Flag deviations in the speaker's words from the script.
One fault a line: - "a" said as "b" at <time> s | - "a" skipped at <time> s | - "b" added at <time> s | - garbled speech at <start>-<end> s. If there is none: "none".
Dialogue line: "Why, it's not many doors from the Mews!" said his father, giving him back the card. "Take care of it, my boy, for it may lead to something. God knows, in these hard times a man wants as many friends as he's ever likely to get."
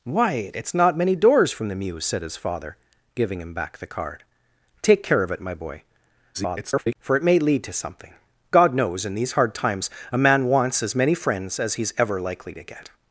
- garbled speech at 6.3-7.0 s